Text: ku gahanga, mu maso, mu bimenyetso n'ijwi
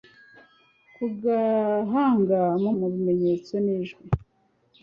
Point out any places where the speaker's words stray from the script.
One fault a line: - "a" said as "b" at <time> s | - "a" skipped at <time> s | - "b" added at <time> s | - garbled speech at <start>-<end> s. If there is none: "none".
- "maso" skipped at 2.7 s